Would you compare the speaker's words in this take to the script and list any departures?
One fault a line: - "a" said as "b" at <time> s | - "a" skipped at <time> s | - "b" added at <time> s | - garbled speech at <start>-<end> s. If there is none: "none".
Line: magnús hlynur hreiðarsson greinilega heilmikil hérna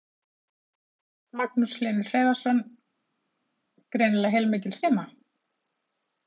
none